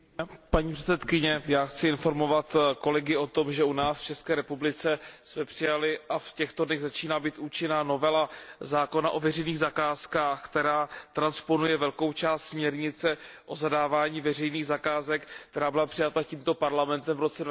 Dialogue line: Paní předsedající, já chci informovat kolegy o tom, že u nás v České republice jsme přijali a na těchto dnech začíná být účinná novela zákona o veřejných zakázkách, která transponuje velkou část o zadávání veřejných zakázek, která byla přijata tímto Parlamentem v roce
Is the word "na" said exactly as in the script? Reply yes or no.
no